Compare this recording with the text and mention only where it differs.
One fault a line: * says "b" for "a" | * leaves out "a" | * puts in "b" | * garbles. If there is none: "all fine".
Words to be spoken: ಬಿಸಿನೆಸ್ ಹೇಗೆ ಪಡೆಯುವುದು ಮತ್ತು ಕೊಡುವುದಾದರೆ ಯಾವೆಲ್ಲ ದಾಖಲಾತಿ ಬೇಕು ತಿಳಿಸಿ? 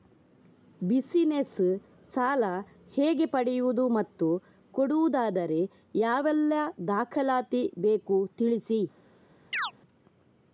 * puts in "ಸಾಲ"